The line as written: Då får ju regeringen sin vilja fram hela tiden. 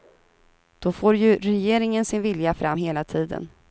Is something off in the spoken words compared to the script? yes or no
no